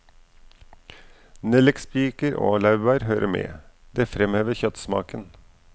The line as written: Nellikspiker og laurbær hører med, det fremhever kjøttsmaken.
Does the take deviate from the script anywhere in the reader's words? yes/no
no